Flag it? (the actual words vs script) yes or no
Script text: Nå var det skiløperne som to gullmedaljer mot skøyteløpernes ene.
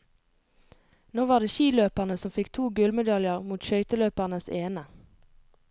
yes